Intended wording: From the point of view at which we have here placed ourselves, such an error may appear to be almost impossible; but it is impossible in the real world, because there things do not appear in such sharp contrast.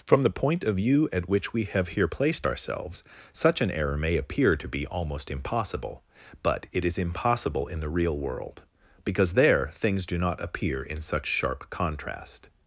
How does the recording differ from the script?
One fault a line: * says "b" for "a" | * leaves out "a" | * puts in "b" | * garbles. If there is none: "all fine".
all fine